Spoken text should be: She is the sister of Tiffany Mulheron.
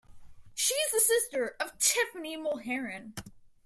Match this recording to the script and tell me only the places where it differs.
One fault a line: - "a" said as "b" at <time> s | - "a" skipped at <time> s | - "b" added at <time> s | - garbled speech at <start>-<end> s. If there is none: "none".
none